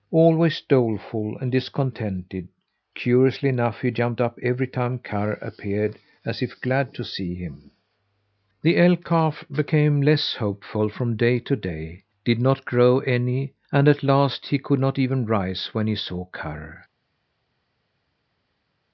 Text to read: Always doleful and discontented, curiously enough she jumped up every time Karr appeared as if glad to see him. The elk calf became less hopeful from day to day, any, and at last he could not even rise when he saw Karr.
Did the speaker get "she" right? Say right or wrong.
wrong